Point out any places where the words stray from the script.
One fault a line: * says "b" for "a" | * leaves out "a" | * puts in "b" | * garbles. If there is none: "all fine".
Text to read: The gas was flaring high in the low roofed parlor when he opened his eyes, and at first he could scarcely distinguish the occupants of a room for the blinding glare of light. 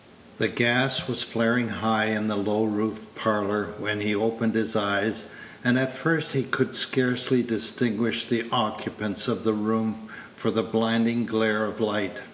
* says "the" for "a"